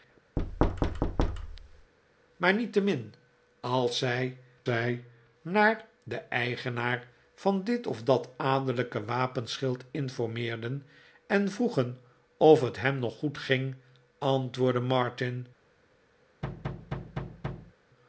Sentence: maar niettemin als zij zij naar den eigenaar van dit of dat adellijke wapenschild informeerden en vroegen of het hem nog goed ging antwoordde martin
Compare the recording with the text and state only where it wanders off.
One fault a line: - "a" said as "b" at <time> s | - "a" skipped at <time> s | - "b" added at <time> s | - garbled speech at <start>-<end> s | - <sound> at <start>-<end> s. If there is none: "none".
- thud at 0.4-1.9 s
- thud at 16.4-17.7 s